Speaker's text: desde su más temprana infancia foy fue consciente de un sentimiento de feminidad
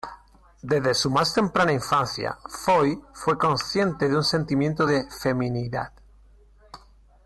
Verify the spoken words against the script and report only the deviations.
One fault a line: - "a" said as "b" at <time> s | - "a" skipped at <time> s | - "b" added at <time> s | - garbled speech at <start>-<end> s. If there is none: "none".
none